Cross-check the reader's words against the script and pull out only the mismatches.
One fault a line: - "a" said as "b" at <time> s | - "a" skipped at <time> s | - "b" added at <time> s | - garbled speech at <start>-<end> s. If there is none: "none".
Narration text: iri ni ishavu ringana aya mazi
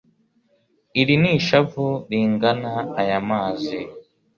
none